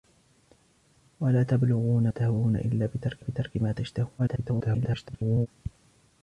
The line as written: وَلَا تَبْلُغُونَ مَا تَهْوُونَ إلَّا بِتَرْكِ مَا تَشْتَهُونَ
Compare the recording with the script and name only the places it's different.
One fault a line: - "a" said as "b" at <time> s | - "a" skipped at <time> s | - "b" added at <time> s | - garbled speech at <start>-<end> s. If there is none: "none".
- "مَا" skipped at 2.1 s
- "بِتَرْكِ" added at 3.2 s
- garbled speech at 4.2-5.5 s